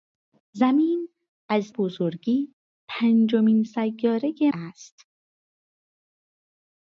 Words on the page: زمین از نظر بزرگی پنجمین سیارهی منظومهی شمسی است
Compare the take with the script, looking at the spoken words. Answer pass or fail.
fail